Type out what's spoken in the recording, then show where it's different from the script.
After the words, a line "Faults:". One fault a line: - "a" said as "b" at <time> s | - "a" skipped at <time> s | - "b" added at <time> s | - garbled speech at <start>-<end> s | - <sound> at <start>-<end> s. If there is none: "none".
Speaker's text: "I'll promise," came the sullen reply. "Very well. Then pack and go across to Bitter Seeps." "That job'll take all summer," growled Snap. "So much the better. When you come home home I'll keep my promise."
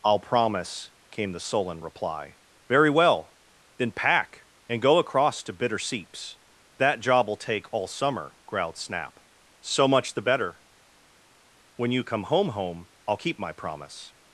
"I'll promise," came the sullen reply. "Very well. Then pack and go across to Bitter Seeps." "That job'll take all summer," growled Snap. "So much the better. When you come home home I'll keep my promise."
Faults:
none